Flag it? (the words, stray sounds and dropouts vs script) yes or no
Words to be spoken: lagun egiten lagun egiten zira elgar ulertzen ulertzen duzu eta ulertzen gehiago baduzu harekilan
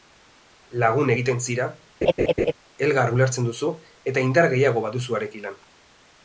yes